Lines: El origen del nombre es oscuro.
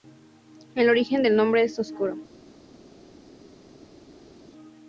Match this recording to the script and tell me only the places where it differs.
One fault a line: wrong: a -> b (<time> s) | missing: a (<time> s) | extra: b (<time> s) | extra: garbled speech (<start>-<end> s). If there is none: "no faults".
no faults